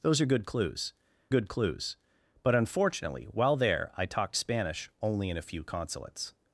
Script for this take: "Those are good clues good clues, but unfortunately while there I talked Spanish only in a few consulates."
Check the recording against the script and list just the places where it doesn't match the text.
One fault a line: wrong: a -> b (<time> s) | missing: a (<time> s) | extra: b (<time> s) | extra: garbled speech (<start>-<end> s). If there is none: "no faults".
no faults